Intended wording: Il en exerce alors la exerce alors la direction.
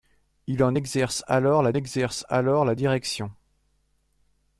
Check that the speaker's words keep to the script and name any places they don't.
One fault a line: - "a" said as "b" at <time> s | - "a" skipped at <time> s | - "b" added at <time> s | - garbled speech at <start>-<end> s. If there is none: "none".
none